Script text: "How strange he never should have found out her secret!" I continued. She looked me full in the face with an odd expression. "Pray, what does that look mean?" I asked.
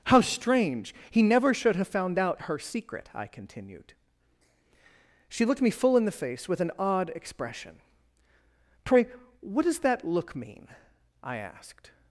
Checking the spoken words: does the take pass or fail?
pass